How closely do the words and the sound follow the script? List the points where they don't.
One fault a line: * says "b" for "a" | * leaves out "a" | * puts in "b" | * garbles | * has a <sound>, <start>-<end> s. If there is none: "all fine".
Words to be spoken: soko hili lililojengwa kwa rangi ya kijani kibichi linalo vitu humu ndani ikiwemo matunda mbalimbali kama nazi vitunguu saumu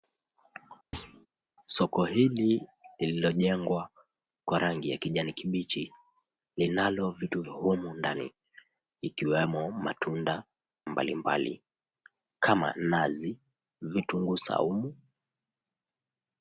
* has a thud, 0.9-1.3 s